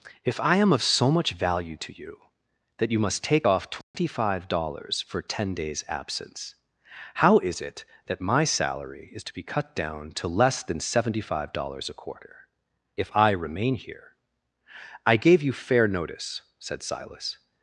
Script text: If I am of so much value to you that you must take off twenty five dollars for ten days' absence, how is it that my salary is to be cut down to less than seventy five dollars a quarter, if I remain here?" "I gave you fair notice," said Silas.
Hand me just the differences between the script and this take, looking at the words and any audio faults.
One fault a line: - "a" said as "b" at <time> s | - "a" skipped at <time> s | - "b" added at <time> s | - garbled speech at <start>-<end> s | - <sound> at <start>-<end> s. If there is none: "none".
- dropout at 3.8-3.9 s